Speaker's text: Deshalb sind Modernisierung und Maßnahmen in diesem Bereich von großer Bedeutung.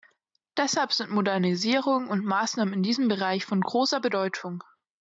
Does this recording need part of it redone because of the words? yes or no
no